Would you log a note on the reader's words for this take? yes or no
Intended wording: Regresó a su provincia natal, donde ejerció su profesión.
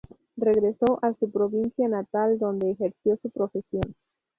no